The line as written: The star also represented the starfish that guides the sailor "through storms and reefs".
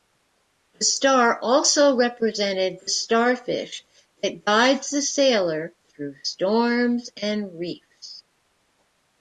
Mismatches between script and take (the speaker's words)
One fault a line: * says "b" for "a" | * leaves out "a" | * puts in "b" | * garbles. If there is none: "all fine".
all fine